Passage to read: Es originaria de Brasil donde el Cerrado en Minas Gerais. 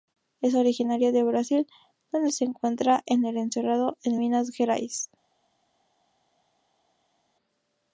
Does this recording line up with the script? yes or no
no